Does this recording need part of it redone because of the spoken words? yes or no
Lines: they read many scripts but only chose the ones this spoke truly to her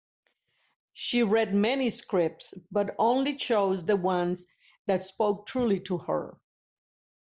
yes